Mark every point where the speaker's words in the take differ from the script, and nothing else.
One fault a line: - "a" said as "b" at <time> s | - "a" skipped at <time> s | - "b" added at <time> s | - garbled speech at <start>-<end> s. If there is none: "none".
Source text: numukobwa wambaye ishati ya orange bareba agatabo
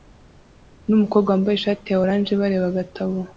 none